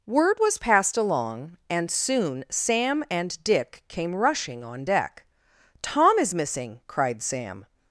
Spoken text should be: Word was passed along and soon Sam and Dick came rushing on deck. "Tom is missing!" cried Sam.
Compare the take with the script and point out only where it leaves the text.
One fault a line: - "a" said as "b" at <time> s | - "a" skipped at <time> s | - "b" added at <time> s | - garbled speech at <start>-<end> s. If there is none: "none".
none